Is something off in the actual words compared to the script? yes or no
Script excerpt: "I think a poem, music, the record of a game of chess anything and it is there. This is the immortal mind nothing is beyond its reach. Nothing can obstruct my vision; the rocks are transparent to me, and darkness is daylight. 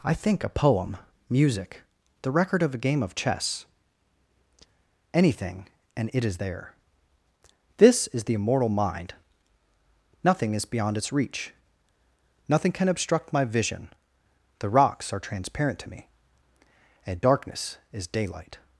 no